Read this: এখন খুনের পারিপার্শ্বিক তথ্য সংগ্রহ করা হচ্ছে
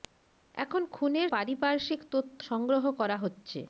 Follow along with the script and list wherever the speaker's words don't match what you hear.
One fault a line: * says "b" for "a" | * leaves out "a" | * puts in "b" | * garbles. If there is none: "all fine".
all fine